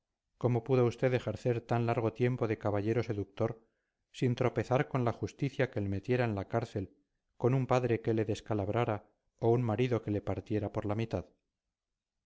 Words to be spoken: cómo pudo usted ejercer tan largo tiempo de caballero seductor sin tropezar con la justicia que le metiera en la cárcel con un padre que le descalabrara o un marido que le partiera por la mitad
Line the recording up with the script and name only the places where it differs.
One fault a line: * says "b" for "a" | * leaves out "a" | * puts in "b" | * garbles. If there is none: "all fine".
all fine